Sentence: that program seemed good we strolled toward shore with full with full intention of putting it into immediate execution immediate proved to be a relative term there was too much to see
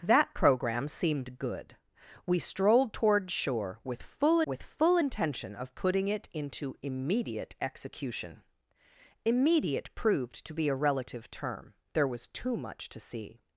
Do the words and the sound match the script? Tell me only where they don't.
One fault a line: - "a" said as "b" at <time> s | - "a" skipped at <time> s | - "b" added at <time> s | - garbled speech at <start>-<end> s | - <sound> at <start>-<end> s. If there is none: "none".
none